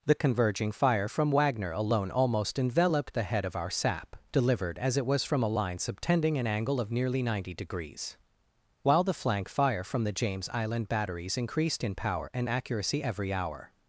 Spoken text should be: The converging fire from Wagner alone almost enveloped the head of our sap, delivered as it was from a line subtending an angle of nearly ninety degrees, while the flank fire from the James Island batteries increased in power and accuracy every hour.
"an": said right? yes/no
yes